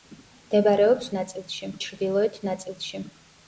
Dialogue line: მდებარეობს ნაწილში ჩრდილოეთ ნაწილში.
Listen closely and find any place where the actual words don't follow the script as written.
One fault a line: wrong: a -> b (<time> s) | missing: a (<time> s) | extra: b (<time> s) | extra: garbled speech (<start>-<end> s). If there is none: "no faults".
no faults